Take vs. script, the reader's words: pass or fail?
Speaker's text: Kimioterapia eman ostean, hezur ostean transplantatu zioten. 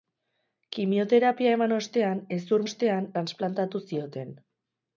pass